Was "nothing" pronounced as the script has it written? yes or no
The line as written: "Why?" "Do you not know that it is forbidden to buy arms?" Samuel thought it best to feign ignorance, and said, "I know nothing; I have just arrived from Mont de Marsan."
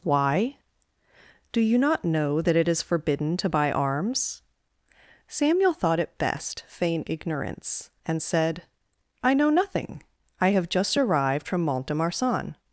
yes